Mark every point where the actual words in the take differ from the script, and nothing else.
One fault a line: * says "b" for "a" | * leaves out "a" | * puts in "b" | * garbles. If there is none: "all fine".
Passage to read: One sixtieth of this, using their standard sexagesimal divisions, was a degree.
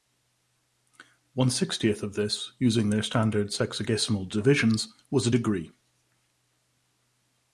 all fine